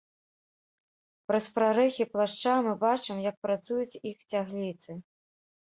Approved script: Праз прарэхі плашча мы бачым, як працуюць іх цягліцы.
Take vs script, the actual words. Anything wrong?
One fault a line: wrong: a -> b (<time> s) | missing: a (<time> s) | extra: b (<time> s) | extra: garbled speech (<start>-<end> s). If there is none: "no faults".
no faults